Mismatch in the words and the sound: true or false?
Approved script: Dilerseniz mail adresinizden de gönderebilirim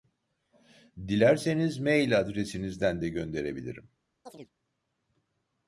true